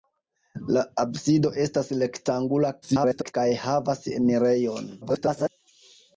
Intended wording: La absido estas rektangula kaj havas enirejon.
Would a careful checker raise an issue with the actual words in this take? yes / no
yes